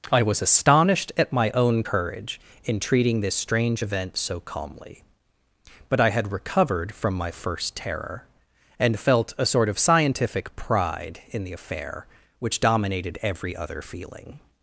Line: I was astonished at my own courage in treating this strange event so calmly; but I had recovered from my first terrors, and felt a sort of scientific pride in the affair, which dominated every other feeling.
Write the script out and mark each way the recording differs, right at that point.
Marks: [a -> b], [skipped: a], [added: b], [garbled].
I was astonished at my own courage in treating this strange event so calmly; but I had recovered from my first [terrors, -> terror] and felt a sort of scientific pride in the affair, which dominated every other feeling.